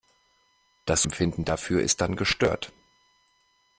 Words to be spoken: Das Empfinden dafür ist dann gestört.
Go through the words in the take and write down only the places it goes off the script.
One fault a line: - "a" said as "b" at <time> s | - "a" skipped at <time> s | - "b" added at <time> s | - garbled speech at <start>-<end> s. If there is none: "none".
none